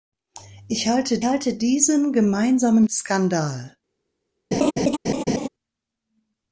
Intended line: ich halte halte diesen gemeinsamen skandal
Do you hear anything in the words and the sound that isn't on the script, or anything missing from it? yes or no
yes